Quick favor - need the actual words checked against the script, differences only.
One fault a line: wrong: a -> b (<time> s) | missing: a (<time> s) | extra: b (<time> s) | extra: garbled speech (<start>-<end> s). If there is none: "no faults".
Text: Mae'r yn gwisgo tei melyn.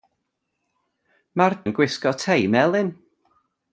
no faults